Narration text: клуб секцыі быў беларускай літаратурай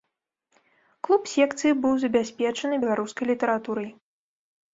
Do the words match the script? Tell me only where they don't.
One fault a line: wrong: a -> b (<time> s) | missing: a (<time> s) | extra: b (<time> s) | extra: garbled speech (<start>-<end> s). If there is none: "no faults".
extra: забяспечаны (2.0 s)